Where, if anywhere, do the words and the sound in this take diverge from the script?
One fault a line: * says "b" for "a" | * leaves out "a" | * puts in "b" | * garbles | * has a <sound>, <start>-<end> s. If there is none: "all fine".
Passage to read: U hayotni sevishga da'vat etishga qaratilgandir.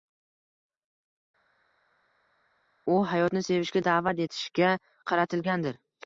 all fine